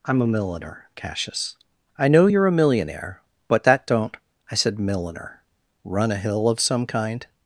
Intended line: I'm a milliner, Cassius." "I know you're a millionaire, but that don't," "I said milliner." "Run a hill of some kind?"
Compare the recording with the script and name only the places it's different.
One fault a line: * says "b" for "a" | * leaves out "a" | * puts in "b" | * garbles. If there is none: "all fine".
all fine